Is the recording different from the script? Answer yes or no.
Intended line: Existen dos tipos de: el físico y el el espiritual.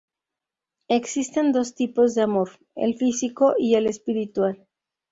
yes